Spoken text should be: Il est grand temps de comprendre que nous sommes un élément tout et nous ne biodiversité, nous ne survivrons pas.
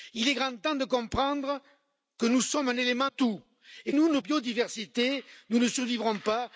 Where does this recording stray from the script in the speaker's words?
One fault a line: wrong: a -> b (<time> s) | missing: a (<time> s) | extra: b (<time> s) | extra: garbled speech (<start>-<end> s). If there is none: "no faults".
no faults